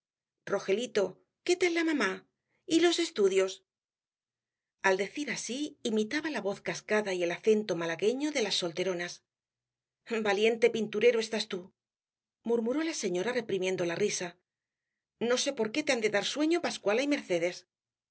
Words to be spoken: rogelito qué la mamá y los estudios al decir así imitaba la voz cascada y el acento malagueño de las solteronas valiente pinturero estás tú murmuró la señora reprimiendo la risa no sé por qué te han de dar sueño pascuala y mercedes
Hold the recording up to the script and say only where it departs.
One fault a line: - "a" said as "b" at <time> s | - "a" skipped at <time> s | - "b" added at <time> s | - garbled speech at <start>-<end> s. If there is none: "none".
- "tal" added at 1.6 s